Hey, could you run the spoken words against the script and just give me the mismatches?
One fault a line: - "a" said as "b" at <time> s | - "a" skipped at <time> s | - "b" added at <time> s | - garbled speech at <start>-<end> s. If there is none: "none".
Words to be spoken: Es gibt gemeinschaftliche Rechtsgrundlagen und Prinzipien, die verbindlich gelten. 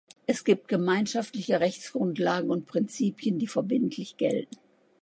none